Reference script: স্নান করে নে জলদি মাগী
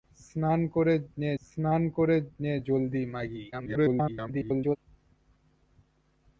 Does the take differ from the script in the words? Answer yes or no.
yes